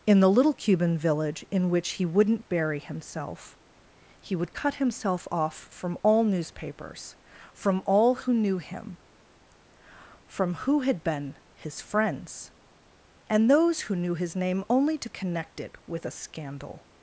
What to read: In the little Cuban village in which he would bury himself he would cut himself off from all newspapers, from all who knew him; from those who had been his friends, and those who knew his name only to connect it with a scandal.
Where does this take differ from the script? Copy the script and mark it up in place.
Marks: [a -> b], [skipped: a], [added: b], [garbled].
In the little Cuban village in which he [would -> wouldn't] bury himself he would cut himself off from all newspapers, from all who knew him; from [skipped: those] who had been his friends, and those who knew his name only to connect it with a scandal.